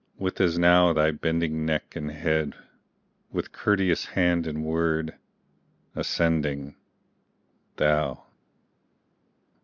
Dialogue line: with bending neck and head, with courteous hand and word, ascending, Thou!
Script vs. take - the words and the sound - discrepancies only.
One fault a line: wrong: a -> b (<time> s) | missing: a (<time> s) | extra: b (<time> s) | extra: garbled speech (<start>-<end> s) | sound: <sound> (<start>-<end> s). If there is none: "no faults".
extra: as now thy (0.4 s)